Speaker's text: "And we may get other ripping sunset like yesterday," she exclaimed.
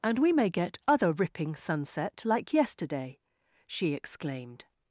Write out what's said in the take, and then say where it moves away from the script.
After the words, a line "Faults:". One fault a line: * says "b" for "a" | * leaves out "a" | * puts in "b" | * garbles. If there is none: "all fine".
"And we may get other ripping sunset like yesterday," she exclaimed.
Faults:
all fine